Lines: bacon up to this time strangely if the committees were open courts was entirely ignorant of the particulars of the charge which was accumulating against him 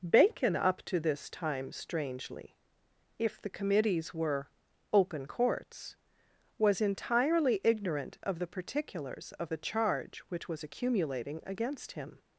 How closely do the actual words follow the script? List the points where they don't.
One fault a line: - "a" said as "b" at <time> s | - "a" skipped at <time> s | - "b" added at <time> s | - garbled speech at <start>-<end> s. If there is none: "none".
none